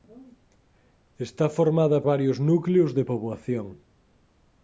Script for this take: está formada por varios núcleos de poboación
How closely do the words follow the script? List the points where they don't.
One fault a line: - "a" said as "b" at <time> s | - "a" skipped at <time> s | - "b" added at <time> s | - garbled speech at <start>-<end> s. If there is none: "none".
- "por" skipped at 2.0 s